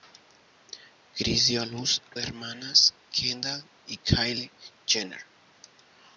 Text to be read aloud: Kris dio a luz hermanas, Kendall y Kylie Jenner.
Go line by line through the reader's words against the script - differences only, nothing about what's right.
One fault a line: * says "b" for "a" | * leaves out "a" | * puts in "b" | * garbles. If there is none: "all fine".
all fine